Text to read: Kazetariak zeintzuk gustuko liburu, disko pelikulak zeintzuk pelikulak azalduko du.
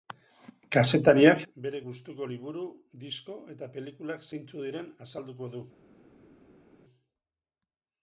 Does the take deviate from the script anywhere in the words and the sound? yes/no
yes